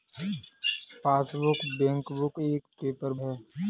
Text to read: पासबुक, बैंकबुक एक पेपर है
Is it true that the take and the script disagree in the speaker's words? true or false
false